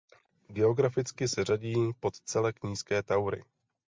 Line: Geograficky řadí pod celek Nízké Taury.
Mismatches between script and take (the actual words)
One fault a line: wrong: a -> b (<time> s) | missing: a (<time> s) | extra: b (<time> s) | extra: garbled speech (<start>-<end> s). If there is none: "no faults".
extra: se (1.3 s)